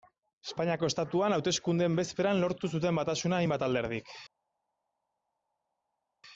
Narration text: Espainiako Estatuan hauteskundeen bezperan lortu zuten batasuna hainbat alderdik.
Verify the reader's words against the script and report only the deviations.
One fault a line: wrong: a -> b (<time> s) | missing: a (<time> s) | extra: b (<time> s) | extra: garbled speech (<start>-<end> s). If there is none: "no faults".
no faults